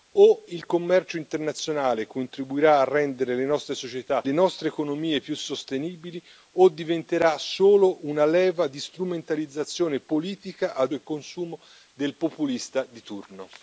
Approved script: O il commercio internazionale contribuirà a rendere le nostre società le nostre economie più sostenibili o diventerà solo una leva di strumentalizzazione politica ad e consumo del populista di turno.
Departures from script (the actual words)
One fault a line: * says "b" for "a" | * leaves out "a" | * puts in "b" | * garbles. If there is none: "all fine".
all fine